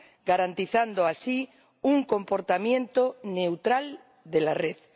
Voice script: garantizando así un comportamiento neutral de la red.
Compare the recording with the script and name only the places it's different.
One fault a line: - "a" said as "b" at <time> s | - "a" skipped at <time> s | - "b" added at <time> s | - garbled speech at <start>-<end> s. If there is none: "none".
none